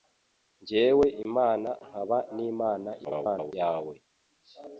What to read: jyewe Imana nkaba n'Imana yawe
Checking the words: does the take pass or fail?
fail